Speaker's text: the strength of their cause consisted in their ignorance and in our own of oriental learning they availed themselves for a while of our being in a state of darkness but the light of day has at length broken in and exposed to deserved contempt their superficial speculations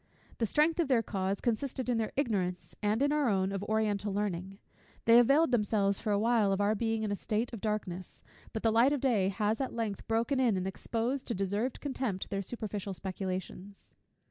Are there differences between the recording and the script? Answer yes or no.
no